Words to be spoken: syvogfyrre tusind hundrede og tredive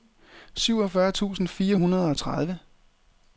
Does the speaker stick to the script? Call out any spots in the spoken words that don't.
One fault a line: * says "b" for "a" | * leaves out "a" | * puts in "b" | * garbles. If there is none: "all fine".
* puts in "fire"